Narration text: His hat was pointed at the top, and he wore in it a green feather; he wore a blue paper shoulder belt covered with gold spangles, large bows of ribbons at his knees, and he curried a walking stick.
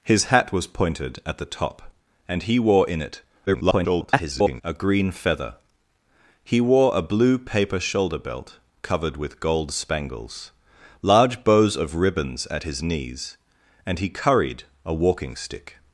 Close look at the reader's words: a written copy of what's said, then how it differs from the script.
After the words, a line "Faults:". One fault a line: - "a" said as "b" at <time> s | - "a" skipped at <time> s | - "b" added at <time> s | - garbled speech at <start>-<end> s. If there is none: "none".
His hat was pointed at the top, and he wore in it [garbled] a green feather; he wore a blue paper shoulder belt covered with gold spangles, large bows of ribbons at his knees, and he curried a walking stick.
Faults:
- garbled speech at 3.5-4.6 s